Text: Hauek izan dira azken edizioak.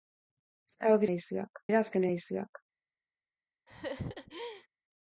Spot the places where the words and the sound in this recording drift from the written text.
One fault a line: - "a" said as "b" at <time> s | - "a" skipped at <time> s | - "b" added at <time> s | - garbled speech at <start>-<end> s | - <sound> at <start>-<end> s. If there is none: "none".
- "izan" said as "edizioak" at 1.1 s
- laugh at 3.7-4.7 s